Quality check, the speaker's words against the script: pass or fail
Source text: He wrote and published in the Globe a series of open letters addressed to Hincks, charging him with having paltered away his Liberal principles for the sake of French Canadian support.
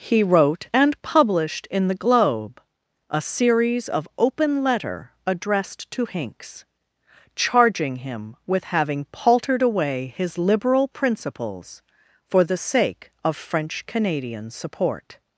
fail